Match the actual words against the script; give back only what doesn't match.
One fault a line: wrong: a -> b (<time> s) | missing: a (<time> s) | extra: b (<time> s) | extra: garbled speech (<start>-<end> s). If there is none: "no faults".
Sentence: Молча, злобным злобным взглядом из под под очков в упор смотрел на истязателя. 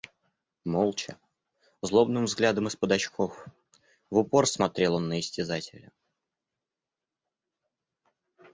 missing: злобным (2.2 s)
missing: под (2.9 s)
extra: он (4.9 s)